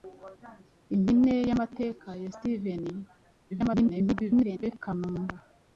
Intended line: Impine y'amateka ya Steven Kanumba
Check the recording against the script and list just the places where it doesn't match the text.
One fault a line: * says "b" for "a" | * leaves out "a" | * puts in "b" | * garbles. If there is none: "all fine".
* garbles